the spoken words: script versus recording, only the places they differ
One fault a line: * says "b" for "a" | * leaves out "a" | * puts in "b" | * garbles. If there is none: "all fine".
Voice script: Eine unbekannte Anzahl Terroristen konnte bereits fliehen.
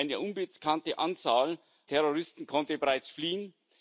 all fine